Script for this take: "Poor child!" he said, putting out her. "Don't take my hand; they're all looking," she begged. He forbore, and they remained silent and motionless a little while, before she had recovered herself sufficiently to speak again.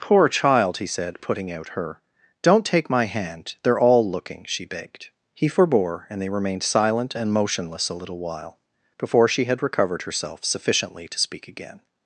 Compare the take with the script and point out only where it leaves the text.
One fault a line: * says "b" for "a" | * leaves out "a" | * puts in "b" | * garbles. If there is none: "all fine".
all fine